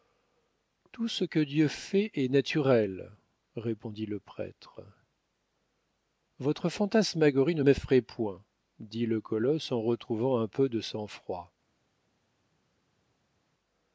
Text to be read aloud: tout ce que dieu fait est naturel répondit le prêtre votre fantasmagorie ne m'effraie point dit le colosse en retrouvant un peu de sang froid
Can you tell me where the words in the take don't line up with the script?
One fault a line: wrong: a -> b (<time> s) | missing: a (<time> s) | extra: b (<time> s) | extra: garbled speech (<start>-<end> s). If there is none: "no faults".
no faults